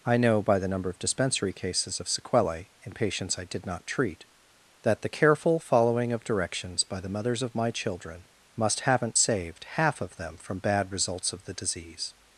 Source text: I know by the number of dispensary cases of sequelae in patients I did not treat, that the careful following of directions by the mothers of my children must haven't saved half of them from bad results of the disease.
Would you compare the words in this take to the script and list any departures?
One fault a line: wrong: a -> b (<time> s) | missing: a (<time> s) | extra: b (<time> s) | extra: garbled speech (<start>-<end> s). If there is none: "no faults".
no faults